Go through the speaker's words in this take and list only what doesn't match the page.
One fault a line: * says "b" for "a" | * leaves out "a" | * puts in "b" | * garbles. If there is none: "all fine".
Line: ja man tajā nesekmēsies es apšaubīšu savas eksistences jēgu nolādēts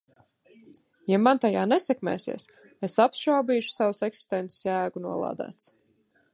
all fine